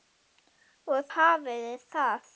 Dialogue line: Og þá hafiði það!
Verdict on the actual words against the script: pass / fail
fail